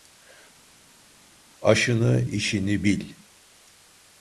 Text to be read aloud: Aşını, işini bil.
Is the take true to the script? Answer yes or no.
yes